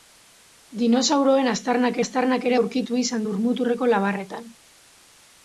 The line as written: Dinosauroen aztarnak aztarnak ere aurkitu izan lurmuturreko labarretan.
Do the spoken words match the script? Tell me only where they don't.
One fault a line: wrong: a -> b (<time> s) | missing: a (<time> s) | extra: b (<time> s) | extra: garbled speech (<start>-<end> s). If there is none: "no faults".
no faults